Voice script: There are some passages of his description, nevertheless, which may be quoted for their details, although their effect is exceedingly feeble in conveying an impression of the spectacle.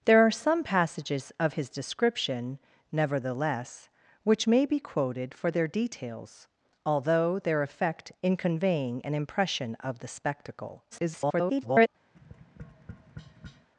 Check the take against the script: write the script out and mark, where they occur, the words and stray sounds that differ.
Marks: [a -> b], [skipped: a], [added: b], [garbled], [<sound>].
There are some passages of his description, nevertheless, which may be quoted for their details, although their effect [skipped: is exceedingly feeble] in conveying an impression of the spectacle. [garbled] [tap]